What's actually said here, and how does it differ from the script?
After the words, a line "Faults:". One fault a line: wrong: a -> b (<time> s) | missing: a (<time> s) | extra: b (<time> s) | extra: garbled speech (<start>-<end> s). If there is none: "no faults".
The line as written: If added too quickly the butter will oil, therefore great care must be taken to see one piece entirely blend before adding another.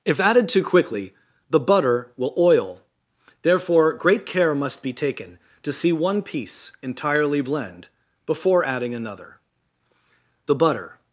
If added too quickly the butter will oil, therefore great care must be taken to see one piece entirely blend before adding another. The butter
Faults:
extra: The butter (10.5 s)